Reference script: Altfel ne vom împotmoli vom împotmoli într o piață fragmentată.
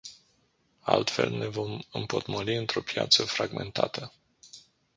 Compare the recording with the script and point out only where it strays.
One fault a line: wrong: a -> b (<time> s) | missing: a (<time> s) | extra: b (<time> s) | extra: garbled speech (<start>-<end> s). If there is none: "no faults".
missing: vom împotmoli (2.5 s)